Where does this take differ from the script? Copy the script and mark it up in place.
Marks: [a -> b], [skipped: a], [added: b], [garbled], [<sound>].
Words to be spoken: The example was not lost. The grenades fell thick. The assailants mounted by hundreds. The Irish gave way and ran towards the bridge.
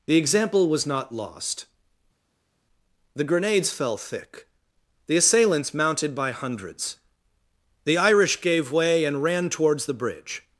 The example was not lost. The grenades fell thick. The assailants mounted by hundreds. The Irish gave way and ran towards the bridge.